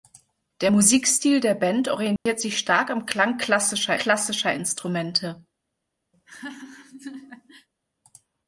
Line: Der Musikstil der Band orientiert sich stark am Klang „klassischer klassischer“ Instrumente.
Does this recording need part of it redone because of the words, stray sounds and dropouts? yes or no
yes